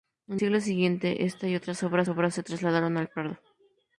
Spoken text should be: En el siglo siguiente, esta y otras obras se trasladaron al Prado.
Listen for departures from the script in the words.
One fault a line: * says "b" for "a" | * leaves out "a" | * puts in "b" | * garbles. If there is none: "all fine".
* leaves out "el"
* puts in "obras"